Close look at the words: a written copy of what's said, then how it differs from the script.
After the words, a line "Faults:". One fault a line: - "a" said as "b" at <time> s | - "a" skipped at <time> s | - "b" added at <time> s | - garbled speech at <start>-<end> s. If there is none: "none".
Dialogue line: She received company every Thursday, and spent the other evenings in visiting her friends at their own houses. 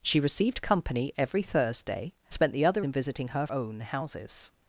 She received company every Thursday, spent the other in visiting her own houses.
Faults:
- "and" skipped at 2.1 s
- "evenings" skipped at 2.9 s
- "friends at their" skipped at 3.5 s